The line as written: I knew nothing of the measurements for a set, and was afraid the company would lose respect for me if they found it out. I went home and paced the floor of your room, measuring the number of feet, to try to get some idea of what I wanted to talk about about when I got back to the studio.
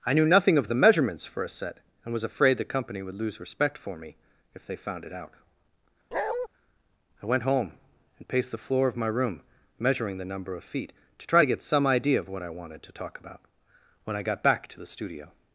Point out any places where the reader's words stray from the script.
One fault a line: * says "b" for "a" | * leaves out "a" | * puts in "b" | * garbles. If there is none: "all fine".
* says "my" for "your"
* leaves out "about"